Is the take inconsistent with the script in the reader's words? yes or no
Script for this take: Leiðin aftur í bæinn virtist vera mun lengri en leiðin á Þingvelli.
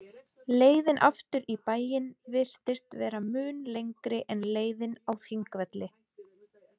no